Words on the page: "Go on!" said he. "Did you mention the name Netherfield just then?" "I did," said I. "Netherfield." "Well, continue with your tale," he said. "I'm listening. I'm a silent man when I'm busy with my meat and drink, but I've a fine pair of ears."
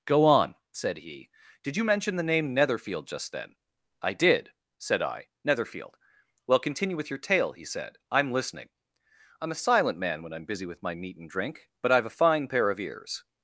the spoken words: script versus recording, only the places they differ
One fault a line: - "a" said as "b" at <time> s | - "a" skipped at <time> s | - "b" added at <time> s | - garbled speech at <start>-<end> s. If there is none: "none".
none